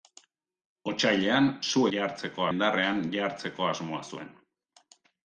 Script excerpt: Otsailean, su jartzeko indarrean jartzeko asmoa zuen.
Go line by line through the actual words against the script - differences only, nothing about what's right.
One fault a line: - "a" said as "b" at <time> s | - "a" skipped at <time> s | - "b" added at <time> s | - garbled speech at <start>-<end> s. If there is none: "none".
none